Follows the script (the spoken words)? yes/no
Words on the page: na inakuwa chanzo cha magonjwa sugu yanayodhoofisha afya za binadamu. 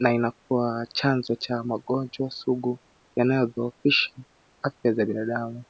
yes